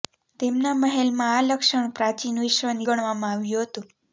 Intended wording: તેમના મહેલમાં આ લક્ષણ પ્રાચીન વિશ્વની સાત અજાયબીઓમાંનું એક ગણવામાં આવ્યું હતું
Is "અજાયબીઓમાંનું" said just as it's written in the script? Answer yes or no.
no